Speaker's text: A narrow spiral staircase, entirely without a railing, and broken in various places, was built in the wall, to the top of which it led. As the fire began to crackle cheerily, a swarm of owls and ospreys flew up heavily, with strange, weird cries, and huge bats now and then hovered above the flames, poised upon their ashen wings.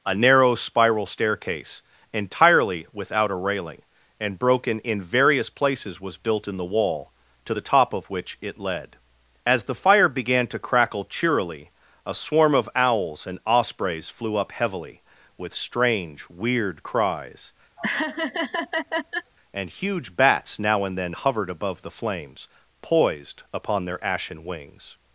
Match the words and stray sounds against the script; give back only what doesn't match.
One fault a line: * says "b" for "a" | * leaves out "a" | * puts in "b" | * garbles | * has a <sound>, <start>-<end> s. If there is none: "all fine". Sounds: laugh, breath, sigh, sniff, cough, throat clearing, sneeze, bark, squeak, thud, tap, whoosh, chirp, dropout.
* has a laugh, 17.8-19.3 s